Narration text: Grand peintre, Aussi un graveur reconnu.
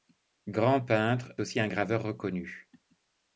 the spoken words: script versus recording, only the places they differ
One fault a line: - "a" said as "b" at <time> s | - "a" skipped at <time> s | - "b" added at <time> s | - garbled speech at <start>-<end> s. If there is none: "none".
none